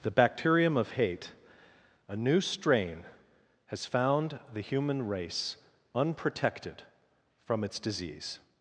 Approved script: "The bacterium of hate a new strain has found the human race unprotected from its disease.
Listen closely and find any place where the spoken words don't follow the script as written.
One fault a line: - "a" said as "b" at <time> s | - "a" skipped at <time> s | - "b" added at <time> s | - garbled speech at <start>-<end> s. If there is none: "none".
none